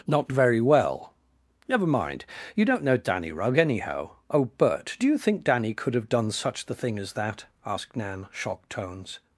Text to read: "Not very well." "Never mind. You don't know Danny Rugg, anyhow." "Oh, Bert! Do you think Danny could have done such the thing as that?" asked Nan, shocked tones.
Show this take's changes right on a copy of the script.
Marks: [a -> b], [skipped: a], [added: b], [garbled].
"Not very well." "Never mind. You don't know Danny Rugg, anyhow." "Oh, Bert! Do you think Danny could have done such the thing as that?" asked Nan, shocked tones.